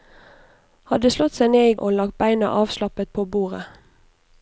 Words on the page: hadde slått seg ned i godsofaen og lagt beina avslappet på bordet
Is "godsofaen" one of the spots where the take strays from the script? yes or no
yes